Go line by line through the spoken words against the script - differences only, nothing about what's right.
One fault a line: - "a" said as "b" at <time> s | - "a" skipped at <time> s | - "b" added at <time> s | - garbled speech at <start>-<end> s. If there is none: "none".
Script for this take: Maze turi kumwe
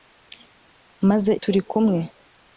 none